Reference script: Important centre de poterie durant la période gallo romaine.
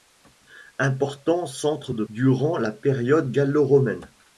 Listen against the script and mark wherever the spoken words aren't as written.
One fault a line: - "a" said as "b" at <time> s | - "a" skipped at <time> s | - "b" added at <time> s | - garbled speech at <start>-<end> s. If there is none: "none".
- "poterie" skipped at 2.0 s